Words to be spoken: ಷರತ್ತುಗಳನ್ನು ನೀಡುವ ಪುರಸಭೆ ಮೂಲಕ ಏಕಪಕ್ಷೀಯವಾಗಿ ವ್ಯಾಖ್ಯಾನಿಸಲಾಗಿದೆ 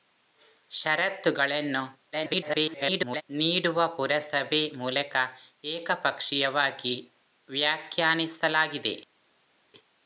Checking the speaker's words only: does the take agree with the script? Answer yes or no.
no